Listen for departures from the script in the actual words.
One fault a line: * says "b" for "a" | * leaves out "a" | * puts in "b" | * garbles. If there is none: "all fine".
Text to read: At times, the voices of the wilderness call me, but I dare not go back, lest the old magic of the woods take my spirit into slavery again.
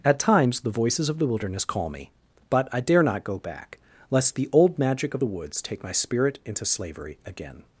all fine